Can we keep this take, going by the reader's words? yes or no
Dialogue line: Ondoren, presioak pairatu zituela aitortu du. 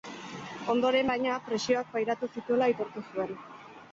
no